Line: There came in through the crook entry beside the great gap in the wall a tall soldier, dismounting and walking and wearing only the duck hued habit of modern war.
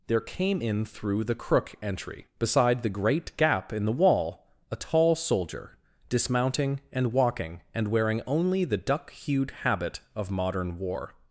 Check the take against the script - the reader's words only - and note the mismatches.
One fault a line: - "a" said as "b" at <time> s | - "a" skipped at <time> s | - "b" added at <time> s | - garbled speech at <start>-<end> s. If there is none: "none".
none